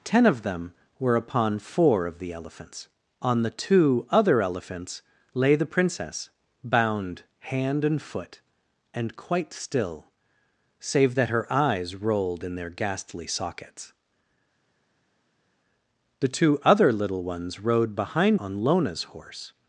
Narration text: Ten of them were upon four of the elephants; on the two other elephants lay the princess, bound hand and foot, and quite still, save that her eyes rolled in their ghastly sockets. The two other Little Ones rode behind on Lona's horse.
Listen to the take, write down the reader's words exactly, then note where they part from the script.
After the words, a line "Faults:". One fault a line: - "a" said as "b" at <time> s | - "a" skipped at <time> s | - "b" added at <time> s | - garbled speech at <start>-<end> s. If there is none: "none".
Ten of them were upon four of the elephants; on the two other elephants lay the princess, bound hand and foot, and quite still, save that her eyes rolled in their ghastly sockets. The two other Little Ones rode behind on Lona's horse.
Faults:
none